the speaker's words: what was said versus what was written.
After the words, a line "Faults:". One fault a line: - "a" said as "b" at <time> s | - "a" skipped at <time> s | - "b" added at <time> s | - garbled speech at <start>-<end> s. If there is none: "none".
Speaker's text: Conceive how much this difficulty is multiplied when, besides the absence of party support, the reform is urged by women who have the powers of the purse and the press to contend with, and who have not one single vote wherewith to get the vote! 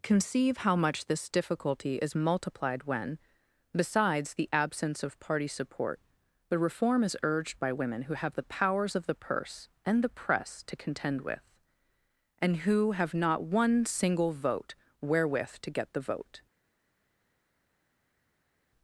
Conceive how much this difficulty is multiplied when, besides the absence of party support, the reform is urged by women who have the powers of the purse and the press to contend with, and who have not one single vote wherewith to get the vote!
Faults:
none